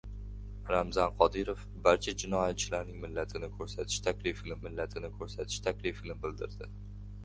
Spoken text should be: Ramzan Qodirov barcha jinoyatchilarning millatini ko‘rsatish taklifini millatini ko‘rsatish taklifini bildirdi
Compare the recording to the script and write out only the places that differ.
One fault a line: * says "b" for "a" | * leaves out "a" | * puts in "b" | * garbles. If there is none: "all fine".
all fine